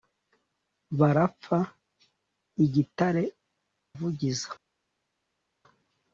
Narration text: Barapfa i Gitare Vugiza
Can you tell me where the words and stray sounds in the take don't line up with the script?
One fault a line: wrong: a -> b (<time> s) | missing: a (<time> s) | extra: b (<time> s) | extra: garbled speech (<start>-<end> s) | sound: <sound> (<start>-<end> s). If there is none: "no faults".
no faults